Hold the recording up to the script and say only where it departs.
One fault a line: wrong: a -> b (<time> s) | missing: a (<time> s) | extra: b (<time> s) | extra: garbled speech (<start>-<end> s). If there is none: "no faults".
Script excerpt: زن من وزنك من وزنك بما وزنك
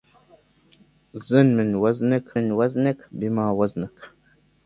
no faults